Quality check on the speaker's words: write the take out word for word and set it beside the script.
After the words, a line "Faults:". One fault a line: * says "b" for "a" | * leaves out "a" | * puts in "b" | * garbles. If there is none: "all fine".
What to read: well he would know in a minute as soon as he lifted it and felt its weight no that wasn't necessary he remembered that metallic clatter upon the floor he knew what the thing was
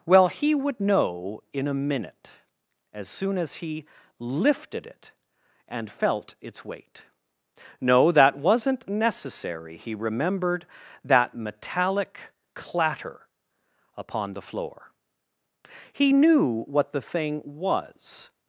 well he would know in a minute as soon as he lifted it and felt its weight no that wasn't necessary he remembered that metallic clatter upon the floor he knew what the thing was
Faults:
all fine